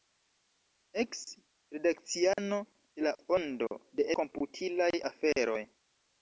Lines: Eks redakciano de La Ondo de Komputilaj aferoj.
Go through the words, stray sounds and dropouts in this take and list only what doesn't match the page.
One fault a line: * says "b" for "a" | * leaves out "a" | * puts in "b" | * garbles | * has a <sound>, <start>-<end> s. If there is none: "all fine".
* has a dropout, 2.3-2.4 s